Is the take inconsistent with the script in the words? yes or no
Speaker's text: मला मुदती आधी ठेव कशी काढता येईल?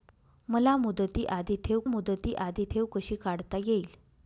yes